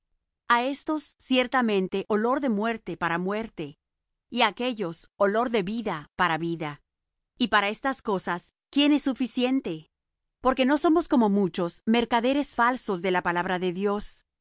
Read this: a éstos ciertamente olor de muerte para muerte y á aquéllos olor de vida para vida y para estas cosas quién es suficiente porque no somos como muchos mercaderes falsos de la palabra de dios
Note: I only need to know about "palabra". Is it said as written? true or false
true